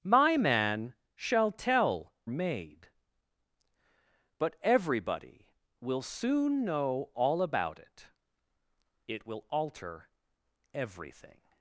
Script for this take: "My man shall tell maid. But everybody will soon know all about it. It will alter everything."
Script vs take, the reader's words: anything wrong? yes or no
no